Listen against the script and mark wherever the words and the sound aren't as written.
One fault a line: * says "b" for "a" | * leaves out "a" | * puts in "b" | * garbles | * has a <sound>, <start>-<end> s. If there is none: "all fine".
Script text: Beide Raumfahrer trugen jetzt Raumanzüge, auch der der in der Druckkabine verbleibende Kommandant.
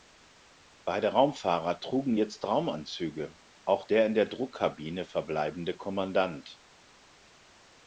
* leaves out "der"